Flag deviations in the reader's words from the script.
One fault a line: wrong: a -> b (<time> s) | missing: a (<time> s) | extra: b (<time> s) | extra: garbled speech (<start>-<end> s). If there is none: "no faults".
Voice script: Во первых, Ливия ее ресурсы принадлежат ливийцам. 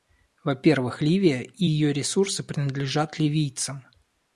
extra: и (1.4 s)